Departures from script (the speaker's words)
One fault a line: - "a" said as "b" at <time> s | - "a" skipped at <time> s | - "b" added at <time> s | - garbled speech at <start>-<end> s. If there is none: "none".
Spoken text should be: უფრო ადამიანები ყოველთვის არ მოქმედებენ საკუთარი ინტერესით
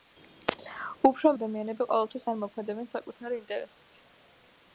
none